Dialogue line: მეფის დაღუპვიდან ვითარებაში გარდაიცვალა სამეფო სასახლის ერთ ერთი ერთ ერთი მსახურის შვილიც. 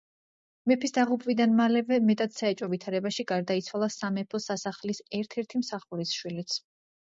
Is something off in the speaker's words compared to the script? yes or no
yes